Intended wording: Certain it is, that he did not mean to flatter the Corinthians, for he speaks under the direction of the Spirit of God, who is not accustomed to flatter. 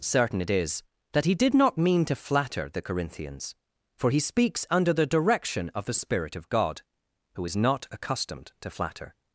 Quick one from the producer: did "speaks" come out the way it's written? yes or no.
yes